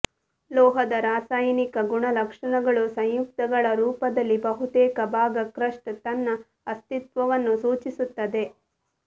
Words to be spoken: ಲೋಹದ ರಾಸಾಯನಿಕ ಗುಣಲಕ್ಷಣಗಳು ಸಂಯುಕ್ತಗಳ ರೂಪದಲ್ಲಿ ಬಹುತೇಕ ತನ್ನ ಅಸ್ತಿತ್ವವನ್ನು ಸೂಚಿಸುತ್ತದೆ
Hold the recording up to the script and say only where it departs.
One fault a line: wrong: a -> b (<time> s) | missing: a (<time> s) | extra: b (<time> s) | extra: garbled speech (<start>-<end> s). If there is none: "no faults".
extra: ಭಾಗ ಕ್ರಸ್ಟ್ (5.1 s)